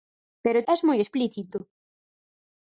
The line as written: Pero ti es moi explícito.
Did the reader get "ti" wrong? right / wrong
wrong